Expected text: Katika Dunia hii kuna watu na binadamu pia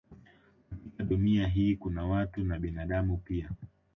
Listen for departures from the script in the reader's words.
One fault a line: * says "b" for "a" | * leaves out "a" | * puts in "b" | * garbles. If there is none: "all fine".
all fine